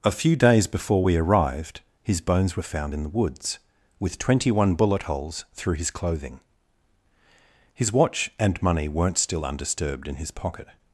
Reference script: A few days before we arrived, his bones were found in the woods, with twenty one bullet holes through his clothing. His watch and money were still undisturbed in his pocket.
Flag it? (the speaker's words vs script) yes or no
yes